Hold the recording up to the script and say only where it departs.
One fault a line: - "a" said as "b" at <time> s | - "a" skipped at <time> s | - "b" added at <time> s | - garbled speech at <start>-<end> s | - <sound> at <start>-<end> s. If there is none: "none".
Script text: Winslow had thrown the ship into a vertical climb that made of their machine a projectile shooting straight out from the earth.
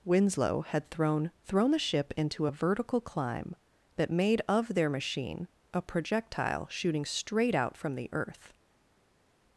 - "thrown" added at 1.4 s